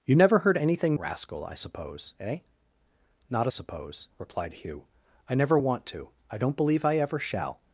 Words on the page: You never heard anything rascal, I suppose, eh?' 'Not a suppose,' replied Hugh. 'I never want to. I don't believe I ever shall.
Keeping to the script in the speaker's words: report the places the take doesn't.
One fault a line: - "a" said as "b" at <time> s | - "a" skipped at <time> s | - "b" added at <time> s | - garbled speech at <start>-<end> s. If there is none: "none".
none